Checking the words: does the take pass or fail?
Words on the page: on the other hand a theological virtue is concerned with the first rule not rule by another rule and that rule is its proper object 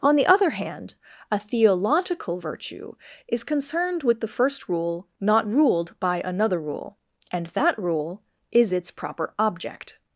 fail